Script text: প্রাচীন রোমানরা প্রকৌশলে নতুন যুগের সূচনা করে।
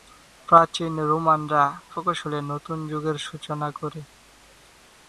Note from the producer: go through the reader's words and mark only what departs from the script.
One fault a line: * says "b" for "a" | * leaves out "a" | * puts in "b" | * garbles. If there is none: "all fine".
all fine